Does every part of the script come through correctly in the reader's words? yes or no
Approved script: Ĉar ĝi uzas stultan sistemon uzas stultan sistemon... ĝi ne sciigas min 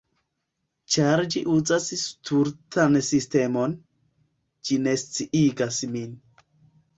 no